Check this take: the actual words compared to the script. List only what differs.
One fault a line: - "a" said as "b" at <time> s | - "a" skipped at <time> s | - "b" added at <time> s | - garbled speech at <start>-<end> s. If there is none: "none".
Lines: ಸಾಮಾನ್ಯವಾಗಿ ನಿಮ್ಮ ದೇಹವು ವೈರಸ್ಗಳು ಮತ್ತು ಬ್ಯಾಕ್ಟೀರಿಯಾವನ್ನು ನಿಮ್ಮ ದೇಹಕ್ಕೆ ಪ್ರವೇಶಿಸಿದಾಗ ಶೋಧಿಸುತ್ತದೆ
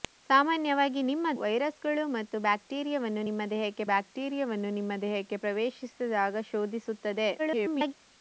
- "ದೇಹವು" skipped at 1.3 s
- "ಬ್ಯಾಕ್ಟೀರಿಯಾವನ್ನು ನಿಮ್ಮ ದೇಹಕ್ಕೆ" added at 3.9 s
- garbled speech at 7.4-7.9 s